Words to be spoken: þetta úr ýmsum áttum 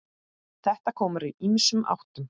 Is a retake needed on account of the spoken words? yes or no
yes